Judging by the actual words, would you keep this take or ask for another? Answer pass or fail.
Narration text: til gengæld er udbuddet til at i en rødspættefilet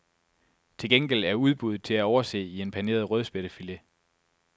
fail